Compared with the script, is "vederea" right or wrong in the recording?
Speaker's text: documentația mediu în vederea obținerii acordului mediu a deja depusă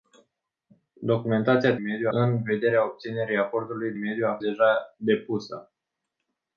right